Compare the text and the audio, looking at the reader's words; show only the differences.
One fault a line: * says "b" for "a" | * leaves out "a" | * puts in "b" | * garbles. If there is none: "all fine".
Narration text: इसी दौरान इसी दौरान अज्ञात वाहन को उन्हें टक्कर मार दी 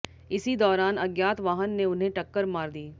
* leaves out "इसी दौरान"
* says "ने" for "को"